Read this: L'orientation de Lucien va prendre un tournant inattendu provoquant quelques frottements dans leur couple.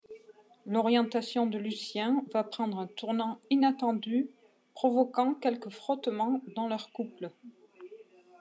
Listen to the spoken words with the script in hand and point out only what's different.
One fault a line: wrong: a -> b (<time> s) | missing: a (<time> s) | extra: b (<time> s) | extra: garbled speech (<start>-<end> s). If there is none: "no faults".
no faults